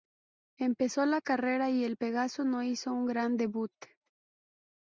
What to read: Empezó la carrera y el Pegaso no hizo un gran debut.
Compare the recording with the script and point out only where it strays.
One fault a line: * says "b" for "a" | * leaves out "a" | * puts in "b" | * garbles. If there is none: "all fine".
all fine